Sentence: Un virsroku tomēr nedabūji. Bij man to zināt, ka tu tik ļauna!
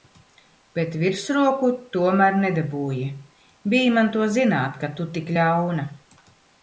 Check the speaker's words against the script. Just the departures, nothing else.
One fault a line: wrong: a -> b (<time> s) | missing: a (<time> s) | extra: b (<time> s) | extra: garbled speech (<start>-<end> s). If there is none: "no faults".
wrong: Un -> Bet (0.8 s)